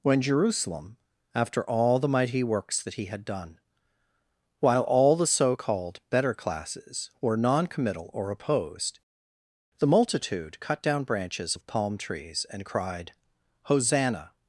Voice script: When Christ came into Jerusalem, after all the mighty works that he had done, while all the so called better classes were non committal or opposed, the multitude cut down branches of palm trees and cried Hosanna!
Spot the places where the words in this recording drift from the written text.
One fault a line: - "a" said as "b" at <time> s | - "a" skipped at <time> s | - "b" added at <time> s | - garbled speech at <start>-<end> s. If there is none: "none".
- "Christ came into" skipped at 0.2 s